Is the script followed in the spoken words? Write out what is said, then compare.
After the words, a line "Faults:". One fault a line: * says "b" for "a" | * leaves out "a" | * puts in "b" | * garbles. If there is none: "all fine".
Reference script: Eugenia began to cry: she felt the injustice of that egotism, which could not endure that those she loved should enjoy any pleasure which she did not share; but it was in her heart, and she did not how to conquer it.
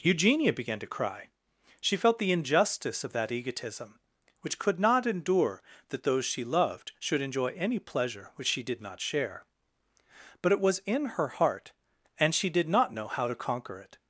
Eugenia began to cry: she felt the injustice of that egotism, which could not endure that those she loved should enjoy any pleasure which she did not share; but it was in her heart, and she did not know how to conquer it.
Faults:
* puts in "know"